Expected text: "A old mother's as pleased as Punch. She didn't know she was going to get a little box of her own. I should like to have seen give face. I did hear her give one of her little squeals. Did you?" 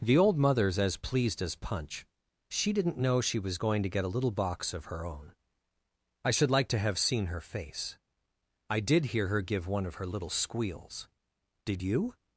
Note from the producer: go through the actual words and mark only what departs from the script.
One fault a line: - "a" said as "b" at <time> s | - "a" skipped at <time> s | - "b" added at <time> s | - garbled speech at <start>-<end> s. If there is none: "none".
- "A" said as "The" at 0.0 s
- "give" said as "her" at 7.2 s